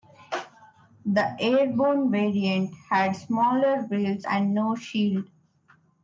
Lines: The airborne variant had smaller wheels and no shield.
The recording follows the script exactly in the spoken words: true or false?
true